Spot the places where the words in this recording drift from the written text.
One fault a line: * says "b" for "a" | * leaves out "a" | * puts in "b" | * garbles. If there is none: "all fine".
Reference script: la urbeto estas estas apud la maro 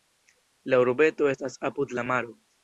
* leaves out "estas"